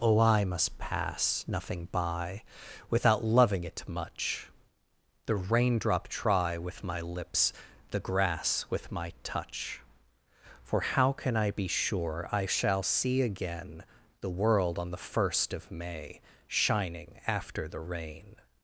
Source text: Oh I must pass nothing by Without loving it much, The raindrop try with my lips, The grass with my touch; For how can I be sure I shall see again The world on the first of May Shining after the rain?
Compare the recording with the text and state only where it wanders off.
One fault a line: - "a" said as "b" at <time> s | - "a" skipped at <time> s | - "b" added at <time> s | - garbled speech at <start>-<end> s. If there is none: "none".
none